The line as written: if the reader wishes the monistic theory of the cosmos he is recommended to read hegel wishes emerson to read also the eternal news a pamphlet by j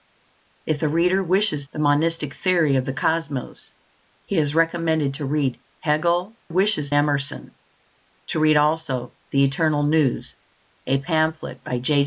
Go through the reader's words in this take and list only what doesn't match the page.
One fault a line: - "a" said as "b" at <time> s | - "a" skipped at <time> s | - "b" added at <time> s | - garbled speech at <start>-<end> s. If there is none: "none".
none